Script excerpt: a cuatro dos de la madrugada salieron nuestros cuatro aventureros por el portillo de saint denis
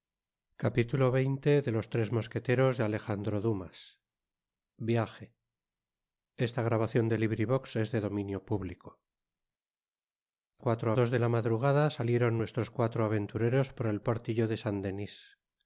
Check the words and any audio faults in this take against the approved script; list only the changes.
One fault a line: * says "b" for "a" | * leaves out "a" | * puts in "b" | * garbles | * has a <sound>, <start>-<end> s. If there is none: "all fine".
all fine